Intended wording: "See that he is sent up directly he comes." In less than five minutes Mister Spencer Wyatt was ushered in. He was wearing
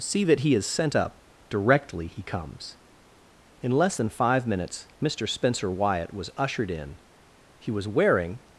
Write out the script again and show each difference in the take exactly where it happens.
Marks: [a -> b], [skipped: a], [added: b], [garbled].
"See that he is sent up directly he comes." In less than five minutes Mister Spencer Wyatt was ushered in. He was wearing